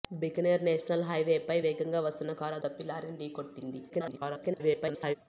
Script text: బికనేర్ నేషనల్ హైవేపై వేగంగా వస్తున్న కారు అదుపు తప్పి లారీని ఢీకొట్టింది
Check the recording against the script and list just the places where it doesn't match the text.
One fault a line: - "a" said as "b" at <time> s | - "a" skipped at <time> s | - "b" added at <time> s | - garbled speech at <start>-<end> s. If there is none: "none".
- "అదుపు" skipped at 2.6 s
- garbled speech at 3.9-5.2 s